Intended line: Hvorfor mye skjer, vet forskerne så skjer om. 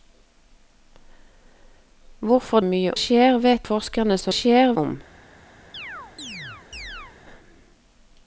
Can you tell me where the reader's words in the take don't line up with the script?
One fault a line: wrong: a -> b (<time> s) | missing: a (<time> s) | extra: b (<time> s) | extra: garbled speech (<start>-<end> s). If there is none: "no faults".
no faults